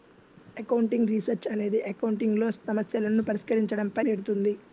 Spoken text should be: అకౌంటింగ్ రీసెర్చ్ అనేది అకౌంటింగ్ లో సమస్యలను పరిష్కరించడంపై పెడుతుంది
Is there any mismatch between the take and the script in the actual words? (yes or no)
no